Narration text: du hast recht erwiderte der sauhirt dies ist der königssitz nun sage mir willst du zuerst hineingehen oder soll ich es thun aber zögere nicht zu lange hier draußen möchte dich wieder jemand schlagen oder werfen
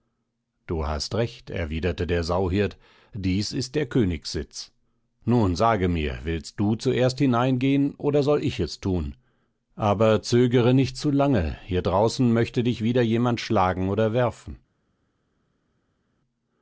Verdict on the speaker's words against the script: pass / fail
pass